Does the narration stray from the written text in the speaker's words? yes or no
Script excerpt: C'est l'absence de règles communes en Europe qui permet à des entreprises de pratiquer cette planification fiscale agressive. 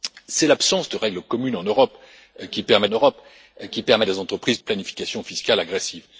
yes